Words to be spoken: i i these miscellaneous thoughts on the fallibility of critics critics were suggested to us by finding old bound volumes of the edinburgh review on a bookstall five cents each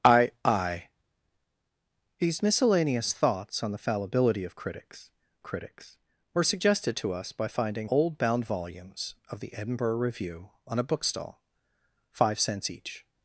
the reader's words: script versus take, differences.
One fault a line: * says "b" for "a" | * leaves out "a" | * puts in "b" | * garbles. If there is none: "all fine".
all fine